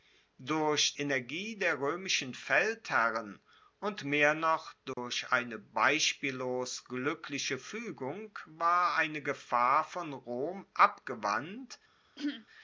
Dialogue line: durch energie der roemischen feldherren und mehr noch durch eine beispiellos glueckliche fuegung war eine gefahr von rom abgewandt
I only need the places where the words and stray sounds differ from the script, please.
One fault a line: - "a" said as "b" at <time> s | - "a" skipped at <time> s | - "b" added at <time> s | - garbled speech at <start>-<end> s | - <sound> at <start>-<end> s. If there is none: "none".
- dropout at 4.9-5.0 s
- throat clearing at 12.2-12.5 s